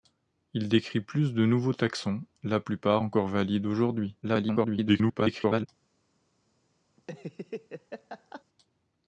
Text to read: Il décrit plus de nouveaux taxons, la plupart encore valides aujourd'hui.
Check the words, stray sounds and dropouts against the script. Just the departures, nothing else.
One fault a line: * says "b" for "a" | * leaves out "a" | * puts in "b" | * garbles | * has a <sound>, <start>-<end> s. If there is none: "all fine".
* garbles
* has a laugh, 7.0-8.4 s